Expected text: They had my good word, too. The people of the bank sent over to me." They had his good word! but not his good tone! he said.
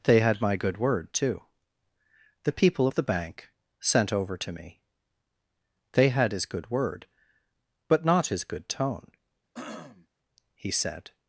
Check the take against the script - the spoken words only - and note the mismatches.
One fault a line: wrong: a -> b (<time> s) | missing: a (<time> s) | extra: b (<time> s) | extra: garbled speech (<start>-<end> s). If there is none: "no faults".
no faults